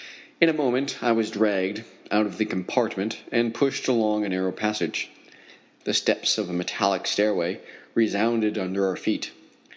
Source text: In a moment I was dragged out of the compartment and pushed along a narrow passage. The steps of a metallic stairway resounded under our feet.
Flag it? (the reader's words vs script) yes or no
no